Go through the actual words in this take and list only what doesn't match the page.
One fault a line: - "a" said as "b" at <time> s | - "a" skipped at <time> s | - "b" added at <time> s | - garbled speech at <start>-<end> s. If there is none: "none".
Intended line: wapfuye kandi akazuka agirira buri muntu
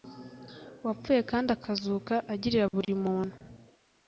none